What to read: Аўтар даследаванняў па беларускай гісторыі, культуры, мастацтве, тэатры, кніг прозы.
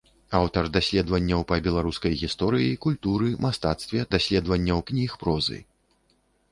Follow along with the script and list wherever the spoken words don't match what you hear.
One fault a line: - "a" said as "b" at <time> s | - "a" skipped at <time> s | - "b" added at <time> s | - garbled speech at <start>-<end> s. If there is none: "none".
- "тэатры" said as "даследаванняў" at 4.2 s